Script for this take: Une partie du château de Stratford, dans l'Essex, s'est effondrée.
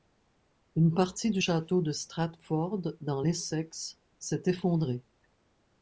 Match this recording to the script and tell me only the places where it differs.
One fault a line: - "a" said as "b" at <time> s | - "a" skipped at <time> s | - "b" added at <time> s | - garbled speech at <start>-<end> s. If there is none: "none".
none